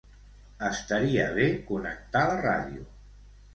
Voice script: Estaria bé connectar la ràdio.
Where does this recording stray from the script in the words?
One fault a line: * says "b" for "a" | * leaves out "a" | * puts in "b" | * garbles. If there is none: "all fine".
all fine